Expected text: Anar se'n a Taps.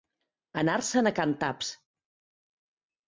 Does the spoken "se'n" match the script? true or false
true